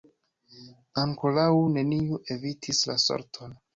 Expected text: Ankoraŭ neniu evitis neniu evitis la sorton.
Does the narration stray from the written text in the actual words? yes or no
yes